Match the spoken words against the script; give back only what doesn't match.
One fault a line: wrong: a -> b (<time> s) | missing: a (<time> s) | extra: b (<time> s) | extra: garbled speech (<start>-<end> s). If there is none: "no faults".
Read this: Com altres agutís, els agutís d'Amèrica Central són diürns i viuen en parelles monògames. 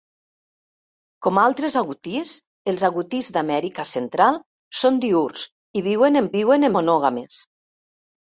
wrong: parelles -> viuen (6.4 s)